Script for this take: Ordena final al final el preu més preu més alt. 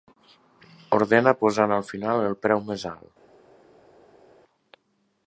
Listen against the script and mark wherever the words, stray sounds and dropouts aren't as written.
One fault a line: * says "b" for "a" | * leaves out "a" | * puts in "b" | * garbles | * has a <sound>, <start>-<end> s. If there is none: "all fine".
* says "posant" for "final"
* leaves out "preu més"